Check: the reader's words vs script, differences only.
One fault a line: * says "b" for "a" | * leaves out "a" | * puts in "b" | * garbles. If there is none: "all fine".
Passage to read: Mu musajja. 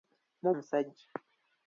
all fine